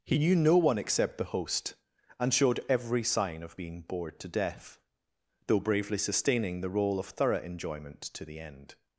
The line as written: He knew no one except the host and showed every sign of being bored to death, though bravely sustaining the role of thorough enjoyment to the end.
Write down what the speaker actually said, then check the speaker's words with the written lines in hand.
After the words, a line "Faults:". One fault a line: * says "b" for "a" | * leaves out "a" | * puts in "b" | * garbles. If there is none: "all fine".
He knew no one except the host and showed every sign of being bored to death, though bravely sustaining the role of thorough enjoyment to the end.
Faults:
all fine